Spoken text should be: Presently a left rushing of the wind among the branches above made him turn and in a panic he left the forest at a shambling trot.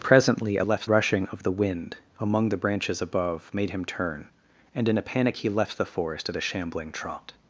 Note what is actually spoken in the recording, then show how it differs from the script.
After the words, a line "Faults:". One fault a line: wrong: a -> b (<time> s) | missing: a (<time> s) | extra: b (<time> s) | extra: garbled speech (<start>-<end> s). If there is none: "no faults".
Presently a left rushing of the wind among the branches above made him turn and in a panic he left the forest at a shambling trot.
Faults:
no faults